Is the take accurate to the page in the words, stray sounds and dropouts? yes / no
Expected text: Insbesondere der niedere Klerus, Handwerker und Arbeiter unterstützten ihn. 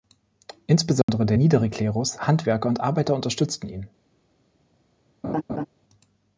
no